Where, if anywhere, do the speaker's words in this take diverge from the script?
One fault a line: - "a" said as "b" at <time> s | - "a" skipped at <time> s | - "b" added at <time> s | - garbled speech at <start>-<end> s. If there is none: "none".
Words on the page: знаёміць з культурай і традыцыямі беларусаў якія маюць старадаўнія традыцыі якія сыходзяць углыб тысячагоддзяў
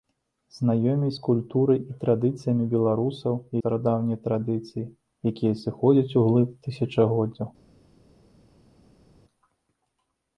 - "якія маюць" skipped at 3.3 s